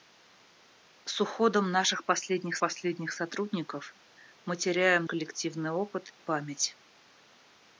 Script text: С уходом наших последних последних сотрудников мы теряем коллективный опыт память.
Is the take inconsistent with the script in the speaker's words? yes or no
no